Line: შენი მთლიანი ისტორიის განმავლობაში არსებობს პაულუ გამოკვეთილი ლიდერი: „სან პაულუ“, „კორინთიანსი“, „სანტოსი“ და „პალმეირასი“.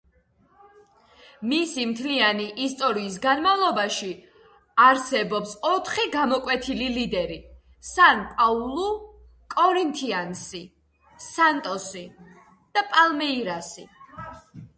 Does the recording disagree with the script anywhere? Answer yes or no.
yes